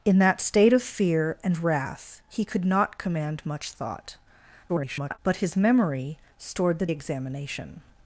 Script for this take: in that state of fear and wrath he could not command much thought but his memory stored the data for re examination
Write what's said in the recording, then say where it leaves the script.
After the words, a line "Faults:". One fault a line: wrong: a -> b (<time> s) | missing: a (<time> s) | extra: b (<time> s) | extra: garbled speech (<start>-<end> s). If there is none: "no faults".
in that state of fear and wrath he could not command much thought [garbled] but his memory stored the examination
Faults:
extra: garbled speech (4.7-5.2 s)
missing: data for re (6.9 s)